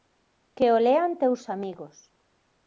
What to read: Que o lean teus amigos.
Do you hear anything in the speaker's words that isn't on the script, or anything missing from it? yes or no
no